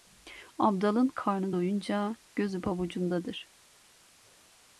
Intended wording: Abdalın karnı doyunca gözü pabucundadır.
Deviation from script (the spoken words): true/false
false